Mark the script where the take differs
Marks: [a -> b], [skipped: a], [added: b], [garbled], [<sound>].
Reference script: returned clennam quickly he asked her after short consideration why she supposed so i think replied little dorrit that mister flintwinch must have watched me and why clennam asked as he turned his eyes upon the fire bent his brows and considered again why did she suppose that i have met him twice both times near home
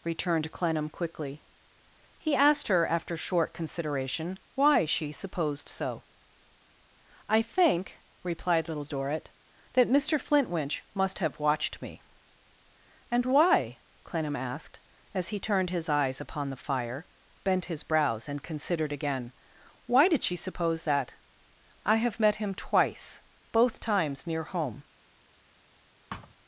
returned clennam quickly he asked her after short consideration why she supposed so i think replied little dorrit that mister flintwinch must have watched me and why clennam asked as he turned his eyes upon the fire bent his brows and considered again why did she suppose that i have met him twice both times near home [thud]